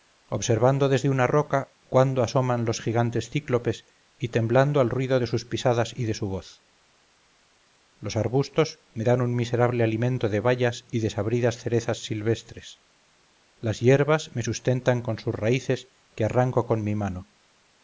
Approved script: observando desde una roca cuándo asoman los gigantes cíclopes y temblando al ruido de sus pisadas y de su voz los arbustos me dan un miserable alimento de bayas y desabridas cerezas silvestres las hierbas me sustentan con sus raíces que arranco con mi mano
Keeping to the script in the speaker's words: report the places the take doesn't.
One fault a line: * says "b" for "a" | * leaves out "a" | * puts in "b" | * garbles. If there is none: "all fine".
all fine